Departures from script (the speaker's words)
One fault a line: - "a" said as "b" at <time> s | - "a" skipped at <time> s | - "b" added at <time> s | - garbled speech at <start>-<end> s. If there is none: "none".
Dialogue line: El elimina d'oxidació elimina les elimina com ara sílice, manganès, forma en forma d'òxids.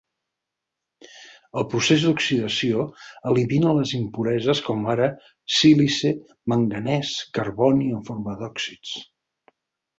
- "elimina" said as "procés" at 1.7 s
- "elimina" said as "impureses" at 4.0 s
- "forma" said as "carboni" at 7.4 s